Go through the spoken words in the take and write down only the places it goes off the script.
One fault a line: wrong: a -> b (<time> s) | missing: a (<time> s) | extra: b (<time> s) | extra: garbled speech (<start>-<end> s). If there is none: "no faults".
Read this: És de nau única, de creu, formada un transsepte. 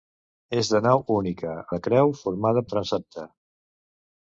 no faults